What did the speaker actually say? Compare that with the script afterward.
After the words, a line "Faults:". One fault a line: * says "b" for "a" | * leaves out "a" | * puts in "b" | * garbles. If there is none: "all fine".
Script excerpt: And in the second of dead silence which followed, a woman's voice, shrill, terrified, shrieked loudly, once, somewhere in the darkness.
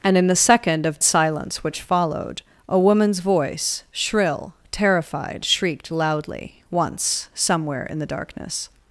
And in the second of silence which followed, a woman's voice, shrill, terrified, shrieked loudly, once, somewhere in the darkness.
Faults:
* leaves out "dead"